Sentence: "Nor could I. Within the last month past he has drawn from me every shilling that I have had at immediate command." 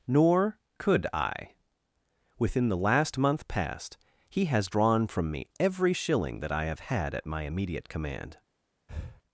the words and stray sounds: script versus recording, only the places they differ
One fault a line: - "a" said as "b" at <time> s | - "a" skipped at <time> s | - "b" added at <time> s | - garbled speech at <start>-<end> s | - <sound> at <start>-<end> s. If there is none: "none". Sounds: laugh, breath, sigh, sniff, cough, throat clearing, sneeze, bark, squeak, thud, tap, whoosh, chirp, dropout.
- "my" added at 7.2 s
- breath at 8.9-9.2 s